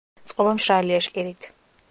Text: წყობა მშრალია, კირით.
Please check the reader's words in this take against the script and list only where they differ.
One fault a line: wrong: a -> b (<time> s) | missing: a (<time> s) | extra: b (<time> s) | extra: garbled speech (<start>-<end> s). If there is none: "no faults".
no faults